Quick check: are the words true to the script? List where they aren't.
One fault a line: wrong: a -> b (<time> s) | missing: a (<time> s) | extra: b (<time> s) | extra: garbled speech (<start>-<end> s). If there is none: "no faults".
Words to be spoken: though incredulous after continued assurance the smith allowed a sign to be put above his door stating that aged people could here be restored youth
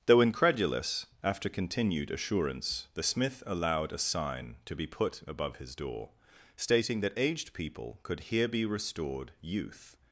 no faults